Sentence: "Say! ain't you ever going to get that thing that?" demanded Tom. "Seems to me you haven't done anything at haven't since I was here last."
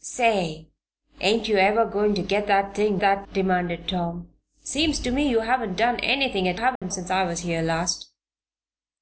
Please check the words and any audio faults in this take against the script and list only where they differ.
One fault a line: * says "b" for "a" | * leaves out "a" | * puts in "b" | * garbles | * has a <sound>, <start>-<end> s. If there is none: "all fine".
* has a dropout, 6.8-6.8 s